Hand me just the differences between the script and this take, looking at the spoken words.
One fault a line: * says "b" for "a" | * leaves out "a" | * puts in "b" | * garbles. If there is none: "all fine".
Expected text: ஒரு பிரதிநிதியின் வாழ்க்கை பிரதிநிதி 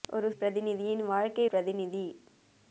all fine